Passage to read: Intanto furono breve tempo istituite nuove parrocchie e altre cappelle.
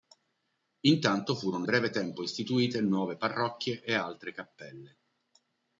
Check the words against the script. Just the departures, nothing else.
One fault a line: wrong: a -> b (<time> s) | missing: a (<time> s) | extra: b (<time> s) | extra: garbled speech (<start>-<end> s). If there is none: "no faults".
no faults